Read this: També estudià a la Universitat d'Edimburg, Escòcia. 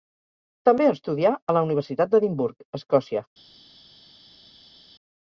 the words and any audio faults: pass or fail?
pass